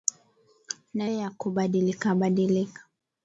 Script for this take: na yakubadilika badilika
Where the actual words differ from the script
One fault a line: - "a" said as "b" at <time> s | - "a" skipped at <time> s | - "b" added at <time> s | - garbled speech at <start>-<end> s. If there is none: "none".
none